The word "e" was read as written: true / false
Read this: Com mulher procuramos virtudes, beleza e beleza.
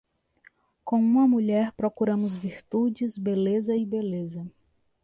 true